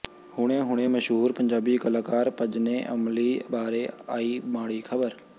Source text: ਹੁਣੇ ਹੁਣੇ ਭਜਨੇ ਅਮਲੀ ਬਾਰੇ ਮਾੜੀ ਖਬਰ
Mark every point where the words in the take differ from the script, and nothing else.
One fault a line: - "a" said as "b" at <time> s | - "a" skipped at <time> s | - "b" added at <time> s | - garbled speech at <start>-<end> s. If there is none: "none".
- "ਮਸ਼ਹੂਰ ਪੰਜਾਬੀ ਕਲਾਕਾਰ" added at 0.9 s
- "ਆਈ" added at 4.1 s